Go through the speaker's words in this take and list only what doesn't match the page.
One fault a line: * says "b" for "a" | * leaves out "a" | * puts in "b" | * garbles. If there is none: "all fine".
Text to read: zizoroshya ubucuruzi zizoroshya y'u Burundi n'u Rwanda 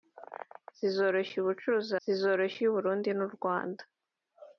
all fine